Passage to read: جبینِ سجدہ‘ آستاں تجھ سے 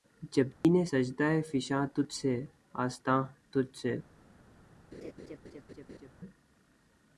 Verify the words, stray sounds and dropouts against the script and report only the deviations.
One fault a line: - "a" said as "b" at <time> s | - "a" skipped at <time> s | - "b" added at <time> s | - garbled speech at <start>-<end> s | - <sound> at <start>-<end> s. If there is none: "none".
- dropout at 0.5-0.6 s
- "فشاں تجھ سے" added at 1.5 s
- laugh at 4.9-6.1 s